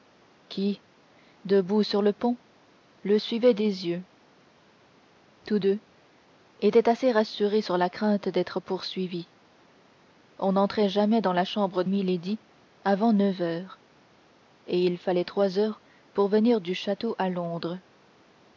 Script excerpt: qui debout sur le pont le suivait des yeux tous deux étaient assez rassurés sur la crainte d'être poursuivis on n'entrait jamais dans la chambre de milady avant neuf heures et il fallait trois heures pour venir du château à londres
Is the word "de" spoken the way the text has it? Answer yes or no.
no